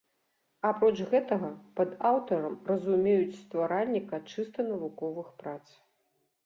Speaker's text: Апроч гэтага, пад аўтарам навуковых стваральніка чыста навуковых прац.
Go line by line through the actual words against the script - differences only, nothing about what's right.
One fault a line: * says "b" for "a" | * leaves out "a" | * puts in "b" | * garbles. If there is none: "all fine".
* says "разумеюць" for "навуковых"